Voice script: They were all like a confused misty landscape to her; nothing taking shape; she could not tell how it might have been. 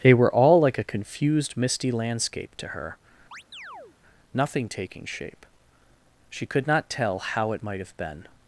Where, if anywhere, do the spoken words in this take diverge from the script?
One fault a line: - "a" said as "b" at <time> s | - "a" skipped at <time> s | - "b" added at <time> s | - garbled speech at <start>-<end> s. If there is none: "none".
none